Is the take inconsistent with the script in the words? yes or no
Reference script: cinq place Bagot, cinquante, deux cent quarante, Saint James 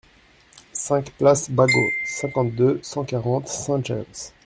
no